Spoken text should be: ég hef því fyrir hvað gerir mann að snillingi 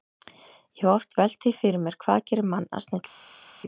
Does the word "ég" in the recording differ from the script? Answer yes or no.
no